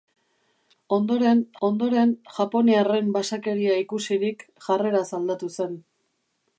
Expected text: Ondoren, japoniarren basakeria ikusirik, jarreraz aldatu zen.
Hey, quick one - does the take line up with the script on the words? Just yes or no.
no